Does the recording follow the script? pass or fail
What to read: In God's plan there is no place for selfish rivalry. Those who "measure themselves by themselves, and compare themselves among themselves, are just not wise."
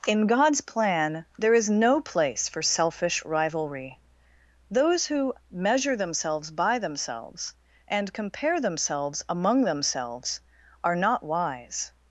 fail